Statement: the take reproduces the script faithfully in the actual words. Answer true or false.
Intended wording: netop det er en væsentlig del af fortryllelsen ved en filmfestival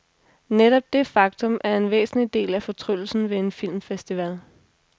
false